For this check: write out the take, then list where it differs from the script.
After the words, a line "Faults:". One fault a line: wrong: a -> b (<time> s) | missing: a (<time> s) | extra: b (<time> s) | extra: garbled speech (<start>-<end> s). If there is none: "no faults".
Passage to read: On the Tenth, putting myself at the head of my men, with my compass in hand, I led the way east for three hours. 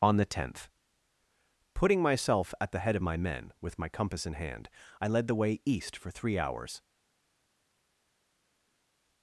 On the Tenth, putting myself at the head of my men, with my compass in hand, I led the way east for three hours.
Faults:
no faults